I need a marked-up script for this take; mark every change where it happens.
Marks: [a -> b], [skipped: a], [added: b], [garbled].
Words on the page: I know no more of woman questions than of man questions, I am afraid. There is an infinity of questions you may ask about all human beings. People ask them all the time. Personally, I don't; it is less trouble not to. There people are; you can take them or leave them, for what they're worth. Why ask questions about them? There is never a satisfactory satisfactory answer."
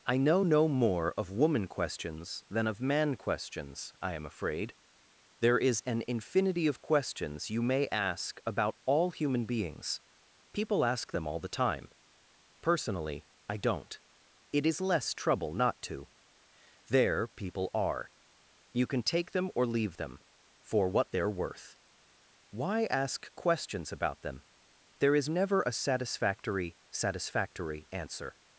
I know no more of woman questions than of man questions, I am afraid. There is an infinity of questions you may ask about all human beings. People ask them all the time. Personally, I don't; it is less trouble not to. There people are; you can take them or leave them, for what they're worth. Why ask questions about them? There is never a satisfactory satisfactory answer."